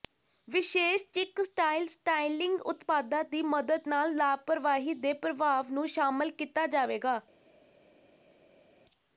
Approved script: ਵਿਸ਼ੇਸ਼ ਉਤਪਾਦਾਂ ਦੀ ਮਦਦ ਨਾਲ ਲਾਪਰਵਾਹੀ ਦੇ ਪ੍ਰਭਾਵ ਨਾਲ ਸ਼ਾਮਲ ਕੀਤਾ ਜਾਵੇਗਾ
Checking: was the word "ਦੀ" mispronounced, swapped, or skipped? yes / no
no